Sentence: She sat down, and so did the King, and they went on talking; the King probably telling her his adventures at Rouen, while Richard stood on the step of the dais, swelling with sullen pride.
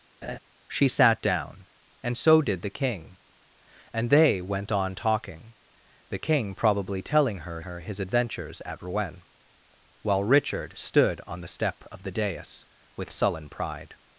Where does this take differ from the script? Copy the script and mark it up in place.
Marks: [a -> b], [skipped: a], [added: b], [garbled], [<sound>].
[laugh] She sat down, and so did the King, and they went on talking; the King probably telling her [added: her] his adventures at Rouen, while Richard stood on the step of the dais, [skipped: swelling] with sullen pride.